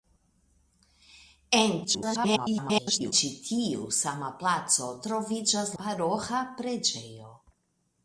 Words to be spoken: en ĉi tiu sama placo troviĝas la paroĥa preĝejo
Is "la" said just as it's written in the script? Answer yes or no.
no